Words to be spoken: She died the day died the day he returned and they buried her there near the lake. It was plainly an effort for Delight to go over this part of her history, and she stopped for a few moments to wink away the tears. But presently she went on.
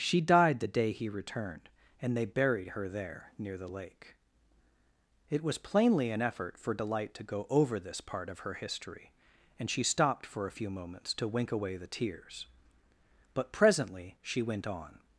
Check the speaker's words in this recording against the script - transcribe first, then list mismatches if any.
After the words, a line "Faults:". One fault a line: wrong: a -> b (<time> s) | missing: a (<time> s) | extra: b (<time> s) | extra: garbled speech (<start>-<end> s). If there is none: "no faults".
She died the day he returned and they buried her there near the lake. It was plainly an effort for Delight to go over this part of her history, and she stopped for a few moments to wink away the tears. But presently she went on.
Faults:
missing: died the day (0.9 s)